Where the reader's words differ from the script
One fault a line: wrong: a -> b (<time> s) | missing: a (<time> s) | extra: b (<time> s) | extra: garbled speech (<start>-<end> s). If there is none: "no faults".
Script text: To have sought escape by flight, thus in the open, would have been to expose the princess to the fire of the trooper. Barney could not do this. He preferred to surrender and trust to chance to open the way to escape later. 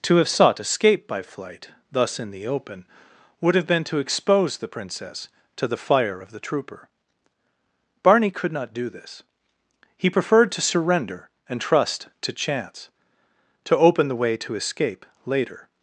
no faults